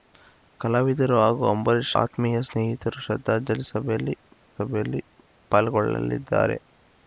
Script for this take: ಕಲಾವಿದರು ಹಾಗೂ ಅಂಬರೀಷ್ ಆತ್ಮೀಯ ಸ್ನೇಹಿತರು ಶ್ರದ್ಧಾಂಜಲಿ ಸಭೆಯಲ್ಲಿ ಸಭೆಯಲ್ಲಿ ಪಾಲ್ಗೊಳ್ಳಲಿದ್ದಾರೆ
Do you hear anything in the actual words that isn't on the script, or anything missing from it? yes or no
no